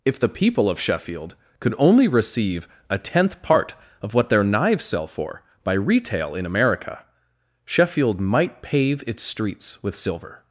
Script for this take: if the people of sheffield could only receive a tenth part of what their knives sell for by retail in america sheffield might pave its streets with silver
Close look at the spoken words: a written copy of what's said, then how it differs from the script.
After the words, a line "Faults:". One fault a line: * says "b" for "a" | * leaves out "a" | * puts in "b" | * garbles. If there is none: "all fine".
if the people of sheffield could only receive a tenth part of what their knives sell for by retail in america sheffield might pave its streets with silver
Faults:
all fine